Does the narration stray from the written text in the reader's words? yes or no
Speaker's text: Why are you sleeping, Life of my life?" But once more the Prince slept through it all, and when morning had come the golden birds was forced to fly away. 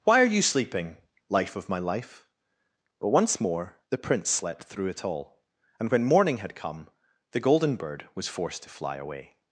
yes